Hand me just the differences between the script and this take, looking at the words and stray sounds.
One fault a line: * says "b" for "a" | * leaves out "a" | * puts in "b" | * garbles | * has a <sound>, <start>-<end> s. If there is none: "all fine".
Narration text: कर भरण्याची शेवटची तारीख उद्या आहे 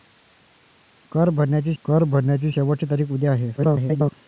* puts in "कर भरण्याची"
* garbles